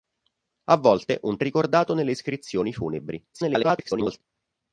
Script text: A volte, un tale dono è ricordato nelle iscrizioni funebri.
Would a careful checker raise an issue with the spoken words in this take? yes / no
yes